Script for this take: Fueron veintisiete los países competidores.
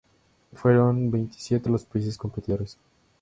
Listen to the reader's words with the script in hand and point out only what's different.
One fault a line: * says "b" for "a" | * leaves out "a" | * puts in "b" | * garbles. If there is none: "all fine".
all fine